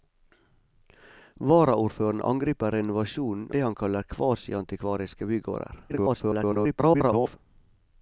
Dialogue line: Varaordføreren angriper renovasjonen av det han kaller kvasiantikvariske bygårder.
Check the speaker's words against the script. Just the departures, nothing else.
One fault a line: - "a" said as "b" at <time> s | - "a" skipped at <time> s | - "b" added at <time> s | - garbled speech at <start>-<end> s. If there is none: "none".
- "av" skipped at 3.5 s
- garbled speech at 5.9-7.4 s